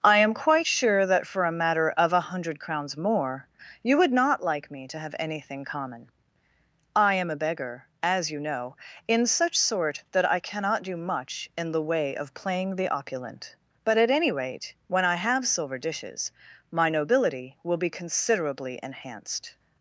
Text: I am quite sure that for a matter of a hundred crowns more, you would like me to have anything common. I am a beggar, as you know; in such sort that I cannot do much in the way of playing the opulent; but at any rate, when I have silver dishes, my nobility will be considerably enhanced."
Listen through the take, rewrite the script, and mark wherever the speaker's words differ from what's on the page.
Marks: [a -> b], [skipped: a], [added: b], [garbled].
I am quite sure that for a matter of a hundred crowns more, you would [added: not] like me to have anything common. I am a beggar, as you know; in such sort that I cannot do much in the way of playing the opulent; but at any rate, when I have silver dishes, my nobility will be considerably enhanced."